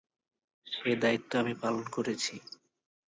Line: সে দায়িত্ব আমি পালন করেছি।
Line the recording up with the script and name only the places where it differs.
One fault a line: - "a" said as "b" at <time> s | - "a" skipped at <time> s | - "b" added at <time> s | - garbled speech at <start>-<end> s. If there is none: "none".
none